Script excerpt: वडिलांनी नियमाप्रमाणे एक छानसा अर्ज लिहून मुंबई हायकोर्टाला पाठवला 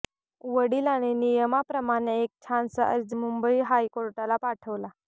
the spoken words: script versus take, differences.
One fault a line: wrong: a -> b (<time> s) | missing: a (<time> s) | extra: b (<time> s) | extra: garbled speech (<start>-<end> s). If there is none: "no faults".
missing: लिहून (3.1 s)